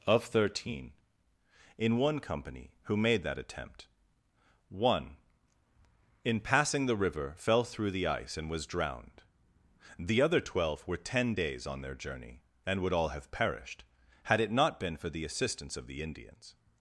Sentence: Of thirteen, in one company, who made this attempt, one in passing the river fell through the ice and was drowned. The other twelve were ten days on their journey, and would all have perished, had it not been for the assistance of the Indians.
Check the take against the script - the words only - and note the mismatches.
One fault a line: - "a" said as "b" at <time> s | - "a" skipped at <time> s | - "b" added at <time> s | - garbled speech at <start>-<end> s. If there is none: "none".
- "this" said as "that" at 3.2 s